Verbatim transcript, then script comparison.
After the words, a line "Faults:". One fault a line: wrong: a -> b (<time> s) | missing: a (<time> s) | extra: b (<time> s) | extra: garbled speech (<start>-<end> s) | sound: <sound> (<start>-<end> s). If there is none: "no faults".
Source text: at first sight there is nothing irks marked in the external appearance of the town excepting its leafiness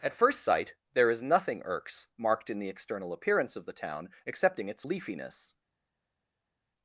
at first sight there is nothing irks marked in the external appearance of the town excepting its leafiness
Faults:
no faults